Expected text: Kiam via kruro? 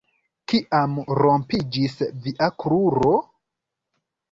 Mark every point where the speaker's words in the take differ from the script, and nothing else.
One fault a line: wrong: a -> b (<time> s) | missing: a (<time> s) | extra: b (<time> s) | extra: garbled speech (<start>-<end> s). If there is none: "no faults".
extra: rompiĝis (1.2 s)